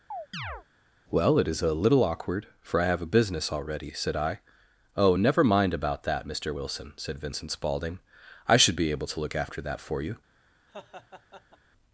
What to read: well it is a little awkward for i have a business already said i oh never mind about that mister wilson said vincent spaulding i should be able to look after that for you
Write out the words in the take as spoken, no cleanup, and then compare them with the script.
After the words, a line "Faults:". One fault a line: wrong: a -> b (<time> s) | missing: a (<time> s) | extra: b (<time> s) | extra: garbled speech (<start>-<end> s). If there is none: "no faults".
well it is a little awkward for i have a business already said i oh never mind about that mister wilson said vincent spaulding i should be able to look after that for you
Faults:
no faults